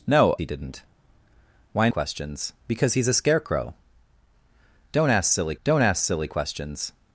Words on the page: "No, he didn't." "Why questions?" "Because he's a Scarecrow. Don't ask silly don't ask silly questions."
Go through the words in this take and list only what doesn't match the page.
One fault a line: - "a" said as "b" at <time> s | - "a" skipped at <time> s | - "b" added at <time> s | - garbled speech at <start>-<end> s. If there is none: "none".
none